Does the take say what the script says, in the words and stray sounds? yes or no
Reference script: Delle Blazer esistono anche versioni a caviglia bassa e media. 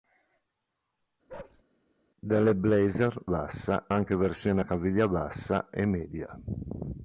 no